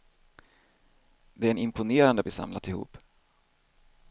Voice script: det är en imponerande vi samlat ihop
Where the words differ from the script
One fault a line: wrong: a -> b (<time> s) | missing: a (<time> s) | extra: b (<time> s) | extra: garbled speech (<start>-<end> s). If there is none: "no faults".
no faults